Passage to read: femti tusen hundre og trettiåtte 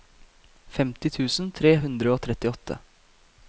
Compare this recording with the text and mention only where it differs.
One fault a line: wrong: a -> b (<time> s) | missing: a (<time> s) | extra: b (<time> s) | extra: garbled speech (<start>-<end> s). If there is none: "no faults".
extra: tre (1.6 s)